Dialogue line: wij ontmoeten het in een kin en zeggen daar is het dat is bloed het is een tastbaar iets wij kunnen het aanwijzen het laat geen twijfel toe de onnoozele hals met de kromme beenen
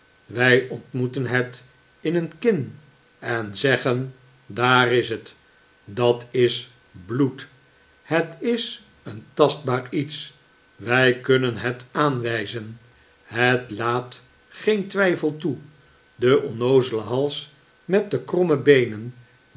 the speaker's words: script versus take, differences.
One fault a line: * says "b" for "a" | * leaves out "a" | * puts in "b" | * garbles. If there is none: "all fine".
all fine